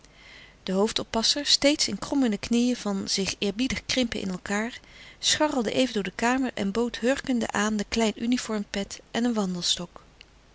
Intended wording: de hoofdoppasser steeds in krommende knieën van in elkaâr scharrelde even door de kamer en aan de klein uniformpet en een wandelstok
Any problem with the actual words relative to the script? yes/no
yes